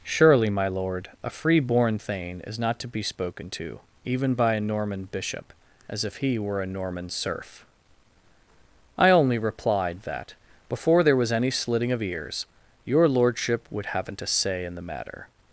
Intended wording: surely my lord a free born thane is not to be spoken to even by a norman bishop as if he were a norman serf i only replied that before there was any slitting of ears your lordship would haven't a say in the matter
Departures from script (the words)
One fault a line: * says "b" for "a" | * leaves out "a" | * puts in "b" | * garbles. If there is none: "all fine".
all fine